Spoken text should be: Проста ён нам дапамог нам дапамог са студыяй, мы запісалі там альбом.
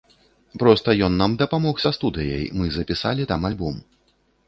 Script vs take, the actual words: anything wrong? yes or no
yes